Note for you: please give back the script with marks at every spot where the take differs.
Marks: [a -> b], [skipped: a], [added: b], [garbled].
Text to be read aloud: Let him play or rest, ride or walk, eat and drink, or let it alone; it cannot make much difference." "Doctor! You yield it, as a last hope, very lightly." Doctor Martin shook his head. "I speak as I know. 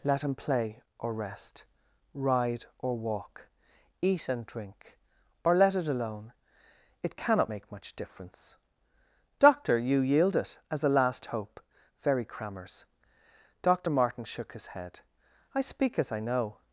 Let him play or rest, ride or walk, eat and drink, or let it alone; it cannot make much difference." "Doctor! You yield it, as a last hope, very [lightly." -> crammers] Doctor Martin shook his head. "I speak as I know.